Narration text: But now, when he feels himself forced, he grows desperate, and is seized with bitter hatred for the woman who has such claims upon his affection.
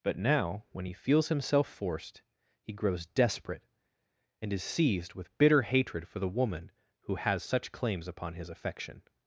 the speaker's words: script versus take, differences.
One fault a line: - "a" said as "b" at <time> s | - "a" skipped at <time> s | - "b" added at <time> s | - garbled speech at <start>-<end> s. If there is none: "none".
none